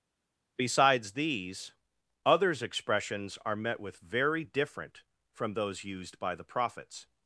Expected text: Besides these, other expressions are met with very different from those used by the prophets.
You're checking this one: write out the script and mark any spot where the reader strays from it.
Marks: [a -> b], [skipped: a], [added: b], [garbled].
Besides these, [other -> others] expressions are met with very different from those used by the prophets.